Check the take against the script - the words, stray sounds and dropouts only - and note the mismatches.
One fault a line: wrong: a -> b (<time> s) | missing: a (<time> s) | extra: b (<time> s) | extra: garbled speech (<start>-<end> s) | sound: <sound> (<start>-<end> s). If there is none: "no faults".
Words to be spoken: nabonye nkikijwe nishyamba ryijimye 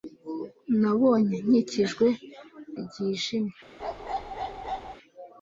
missing: nishyamba (2.1 s)
sound: bark (3.8-5.0 s)